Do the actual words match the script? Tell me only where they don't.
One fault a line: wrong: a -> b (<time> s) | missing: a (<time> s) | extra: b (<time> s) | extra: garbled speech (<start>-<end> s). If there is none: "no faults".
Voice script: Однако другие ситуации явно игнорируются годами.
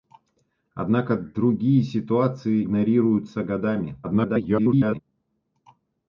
missing: явно (2.6 s)
extra: garbled speech (4.0-5.0 s)